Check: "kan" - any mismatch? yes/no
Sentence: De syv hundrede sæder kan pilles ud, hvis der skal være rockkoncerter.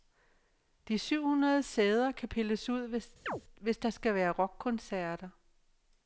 no